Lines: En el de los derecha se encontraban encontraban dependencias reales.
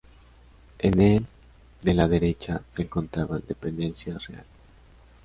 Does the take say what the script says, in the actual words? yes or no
no